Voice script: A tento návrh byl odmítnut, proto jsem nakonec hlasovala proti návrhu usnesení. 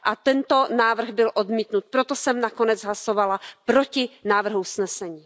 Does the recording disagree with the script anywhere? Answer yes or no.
no